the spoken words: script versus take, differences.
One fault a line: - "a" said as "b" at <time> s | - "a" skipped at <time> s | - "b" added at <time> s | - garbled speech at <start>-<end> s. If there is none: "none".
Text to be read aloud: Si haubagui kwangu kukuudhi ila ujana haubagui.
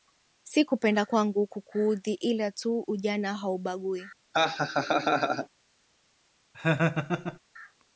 - "haubagui" said as "kupenda" at 0.7 s
- "tu" added at 2.5 s